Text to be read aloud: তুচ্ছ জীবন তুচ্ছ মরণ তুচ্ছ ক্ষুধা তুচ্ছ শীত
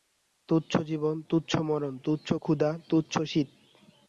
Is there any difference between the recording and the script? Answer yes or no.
no